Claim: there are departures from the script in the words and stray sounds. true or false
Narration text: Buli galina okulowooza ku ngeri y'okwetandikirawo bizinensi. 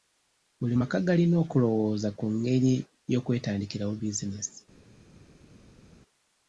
true